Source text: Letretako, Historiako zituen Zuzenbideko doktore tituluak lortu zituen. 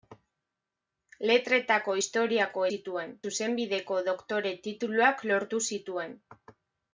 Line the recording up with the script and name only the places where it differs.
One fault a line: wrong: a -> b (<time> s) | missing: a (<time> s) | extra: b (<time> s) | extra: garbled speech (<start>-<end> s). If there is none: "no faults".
no faults